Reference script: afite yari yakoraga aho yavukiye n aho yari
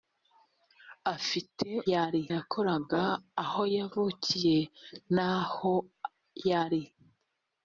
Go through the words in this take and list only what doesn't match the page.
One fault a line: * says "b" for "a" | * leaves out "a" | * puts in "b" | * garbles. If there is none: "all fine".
all fine